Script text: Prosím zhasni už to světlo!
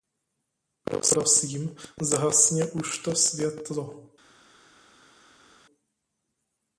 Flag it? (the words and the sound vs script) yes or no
no